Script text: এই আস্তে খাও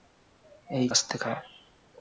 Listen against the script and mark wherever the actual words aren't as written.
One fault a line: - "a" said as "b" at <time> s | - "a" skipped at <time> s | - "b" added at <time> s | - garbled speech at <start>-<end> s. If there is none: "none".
none